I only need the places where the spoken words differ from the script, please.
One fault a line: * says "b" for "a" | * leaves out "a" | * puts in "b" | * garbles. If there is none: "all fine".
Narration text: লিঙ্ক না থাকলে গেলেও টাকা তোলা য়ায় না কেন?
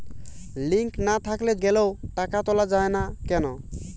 all fine